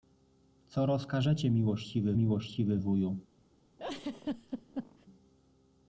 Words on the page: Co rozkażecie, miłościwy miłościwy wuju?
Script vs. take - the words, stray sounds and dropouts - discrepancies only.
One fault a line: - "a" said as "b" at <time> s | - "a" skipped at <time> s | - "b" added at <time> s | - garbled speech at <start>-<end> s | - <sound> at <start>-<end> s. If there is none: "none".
- laugh at 3.8-5.1 s